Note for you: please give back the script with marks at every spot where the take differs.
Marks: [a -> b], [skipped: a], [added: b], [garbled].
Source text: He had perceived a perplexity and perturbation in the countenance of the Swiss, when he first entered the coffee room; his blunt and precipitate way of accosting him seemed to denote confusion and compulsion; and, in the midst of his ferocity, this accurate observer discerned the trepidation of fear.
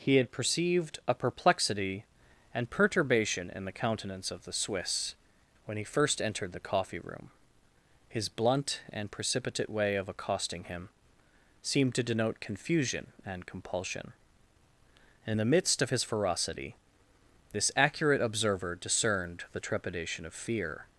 He had perceived a perplexity and perturbation in the countenance of the Swiss, when he first entered the coffee room; his blunt and precipitate way of accosting him seemed to denote confusion and compulsion; [skipped: and,] in the midst of his ferocity, this accurate observer discerned the trepidation of fear.